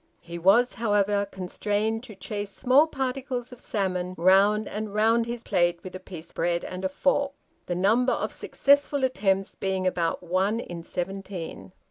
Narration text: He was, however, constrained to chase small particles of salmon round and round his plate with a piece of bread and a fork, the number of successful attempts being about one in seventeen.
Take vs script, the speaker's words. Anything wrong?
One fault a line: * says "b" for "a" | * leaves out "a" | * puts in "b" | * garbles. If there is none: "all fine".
* leaves out "of"